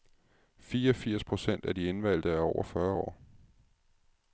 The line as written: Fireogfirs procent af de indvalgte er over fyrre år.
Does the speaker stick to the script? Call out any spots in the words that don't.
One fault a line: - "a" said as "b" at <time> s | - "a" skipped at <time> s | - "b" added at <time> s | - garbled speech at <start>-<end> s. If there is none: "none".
none